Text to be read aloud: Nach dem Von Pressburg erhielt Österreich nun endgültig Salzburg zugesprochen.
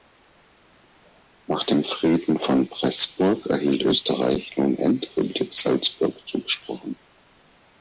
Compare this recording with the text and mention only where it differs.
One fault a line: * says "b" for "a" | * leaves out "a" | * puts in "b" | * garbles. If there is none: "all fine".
* puts in "Frieden"